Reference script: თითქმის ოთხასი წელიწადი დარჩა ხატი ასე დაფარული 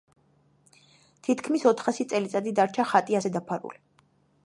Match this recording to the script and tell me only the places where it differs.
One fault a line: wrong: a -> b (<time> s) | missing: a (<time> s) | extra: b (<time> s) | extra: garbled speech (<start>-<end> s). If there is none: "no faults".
no faults